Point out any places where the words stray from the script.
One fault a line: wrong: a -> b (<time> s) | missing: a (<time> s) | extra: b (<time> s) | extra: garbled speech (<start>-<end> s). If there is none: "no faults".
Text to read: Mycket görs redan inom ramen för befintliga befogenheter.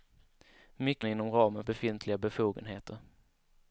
missing: görs redan (1.1 s)
missing: för (1.6 s)